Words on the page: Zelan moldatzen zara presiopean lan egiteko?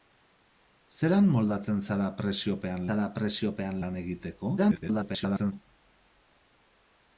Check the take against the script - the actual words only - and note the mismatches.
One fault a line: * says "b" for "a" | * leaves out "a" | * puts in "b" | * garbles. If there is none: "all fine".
* puts in "zara presiopean"
* garbles